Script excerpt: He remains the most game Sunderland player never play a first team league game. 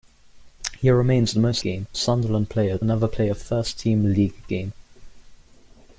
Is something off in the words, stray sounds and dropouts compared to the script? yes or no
no